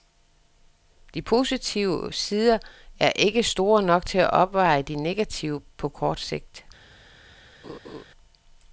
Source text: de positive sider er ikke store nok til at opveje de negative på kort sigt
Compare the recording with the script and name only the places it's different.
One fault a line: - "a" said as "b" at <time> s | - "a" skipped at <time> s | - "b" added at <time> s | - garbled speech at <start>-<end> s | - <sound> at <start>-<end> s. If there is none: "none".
- laugh at 7.6-8.0 s